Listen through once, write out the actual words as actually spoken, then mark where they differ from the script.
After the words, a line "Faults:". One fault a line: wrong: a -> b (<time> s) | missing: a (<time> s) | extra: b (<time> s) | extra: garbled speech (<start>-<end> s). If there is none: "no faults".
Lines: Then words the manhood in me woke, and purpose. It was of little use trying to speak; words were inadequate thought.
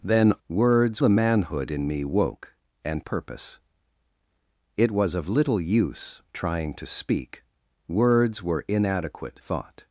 Then words the manhood in me woke, and purpose. It was of little use trying to speak; words were inadequate thought.
Faults:
no faults